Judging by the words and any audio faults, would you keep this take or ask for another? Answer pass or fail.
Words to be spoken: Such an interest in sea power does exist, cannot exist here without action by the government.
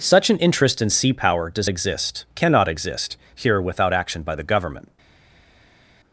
pass